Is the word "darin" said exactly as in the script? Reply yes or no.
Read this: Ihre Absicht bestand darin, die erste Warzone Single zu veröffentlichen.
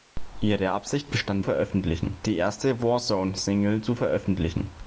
no